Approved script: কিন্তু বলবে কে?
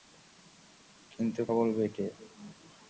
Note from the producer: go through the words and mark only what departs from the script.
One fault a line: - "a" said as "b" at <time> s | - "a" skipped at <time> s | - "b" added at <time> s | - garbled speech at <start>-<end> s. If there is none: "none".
none